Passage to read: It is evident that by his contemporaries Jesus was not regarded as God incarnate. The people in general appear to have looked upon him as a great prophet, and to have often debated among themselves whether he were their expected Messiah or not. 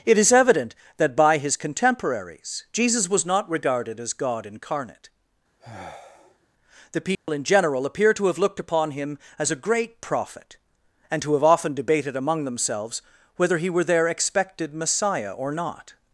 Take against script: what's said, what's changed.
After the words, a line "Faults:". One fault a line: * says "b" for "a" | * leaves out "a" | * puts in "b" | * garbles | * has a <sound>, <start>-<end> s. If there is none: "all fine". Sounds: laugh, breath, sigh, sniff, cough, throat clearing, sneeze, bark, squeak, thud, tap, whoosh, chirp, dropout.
It is evident that by his contemporaries Jesus was not regarded as God incarnate. The people in general appear to have looked upon him as a great prophet, and to have often debated among themselves whether he were their expected Messiah or not.
Faults:
* has a sigh, 5.6-6.5 s
* has a dropout, 7.1-7.3 s